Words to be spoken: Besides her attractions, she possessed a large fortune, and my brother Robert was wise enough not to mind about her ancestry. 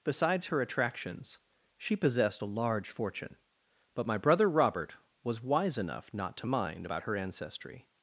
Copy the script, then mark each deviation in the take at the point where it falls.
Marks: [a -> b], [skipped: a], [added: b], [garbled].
Besides her attractions, she possessed a large fortune, [and -> but] my brother Robert was wise enough not to mind about her ancestry.